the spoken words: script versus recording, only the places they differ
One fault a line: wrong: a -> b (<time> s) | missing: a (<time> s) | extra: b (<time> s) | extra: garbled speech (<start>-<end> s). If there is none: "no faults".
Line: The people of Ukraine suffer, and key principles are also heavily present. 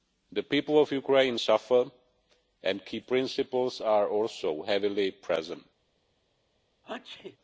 no faults